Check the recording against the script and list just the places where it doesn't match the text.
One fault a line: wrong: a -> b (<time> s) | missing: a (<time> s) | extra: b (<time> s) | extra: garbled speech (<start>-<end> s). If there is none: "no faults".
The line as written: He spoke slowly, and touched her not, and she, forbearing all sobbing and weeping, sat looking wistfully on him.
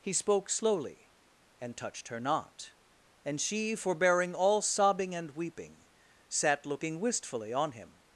no faults